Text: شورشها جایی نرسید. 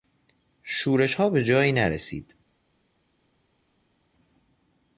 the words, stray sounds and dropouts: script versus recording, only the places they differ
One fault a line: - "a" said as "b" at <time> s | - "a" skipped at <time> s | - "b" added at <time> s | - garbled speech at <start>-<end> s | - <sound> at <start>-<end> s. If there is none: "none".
- "به" added at 1.3 s